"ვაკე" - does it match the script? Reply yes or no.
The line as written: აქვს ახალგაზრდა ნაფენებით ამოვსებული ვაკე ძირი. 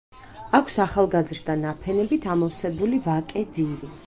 yes